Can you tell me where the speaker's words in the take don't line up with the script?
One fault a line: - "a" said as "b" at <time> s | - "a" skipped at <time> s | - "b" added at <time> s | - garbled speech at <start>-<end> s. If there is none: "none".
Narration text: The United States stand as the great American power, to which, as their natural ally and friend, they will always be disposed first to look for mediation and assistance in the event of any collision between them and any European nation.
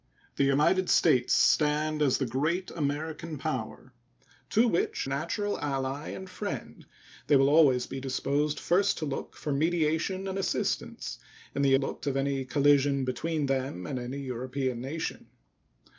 - "as their" skipped at 5.1 s
- "event" said as "look" at 11.8 s